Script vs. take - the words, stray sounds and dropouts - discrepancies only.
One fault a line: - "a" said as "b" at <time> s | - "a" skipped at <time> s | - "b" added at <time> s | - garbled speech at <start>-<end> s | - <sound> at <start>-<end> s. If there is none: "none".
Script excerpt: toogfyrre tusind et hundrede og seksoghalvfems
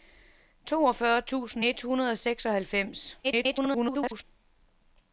- garbled speech at 3.2-4.2 s